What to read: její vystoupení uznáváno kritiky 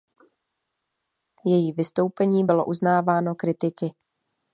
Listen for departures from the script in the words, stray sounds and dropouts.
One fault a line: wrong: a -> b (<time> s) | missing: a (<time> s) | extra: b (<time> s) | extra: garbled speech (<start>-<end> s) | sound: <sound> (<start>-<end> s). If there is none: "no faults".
extra: bylo (2.4 s)